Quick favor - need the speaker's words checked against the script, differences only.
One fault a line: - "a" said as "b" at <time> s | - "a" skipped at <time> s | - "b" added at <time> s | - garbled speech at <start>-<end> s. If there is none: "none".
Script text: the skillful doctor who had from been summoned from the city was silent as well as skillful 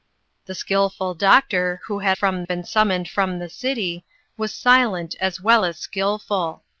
none